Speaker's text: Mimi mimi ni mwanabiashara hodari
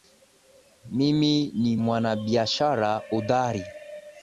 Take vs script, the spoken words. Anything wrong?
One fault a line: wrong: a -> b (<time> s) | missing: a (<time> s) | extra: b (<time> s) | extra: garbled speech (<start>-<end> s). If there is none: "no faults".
missing: mimi (1.5 s)